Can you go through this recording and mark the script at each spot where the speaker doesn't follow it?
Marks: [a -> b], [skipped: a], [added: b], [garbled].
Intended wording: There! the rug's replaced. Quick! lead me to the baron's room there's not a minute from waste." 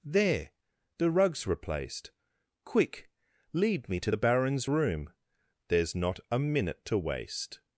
There! the rug's replaced. Quick! lead me to the baron's room there's not a minute [from -> to] waste."